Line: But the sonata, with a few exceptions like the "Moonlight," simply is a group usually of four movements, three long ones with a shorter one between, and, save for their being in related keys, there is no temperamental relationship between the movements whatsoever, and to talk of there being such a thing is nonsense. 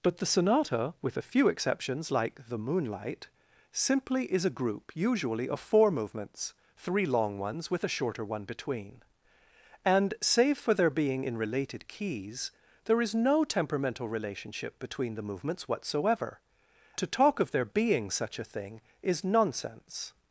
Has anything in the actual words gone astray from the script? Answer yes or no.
yes